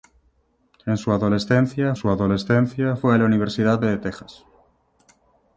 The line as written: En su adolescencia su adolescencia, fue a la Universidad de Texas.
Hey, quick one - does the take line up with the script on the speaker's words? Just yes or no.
yes